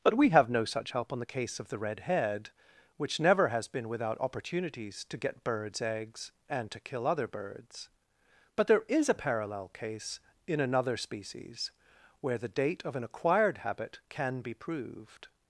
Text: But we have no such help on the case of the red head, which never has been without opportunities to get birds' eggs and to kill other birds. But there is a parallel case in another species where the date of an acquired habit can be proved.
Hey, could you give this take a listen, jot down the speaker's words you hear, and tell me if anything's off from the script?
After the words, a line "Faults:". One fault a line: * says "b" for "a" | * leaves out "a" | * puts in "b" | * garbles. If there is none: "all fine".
But we have no such help on the case of the red head, which never has been without opportunities to get birds' eggs and to kill other birds. But there is a parallel case in another species where the date of an acquired habit can be proved.
Faults:
all fine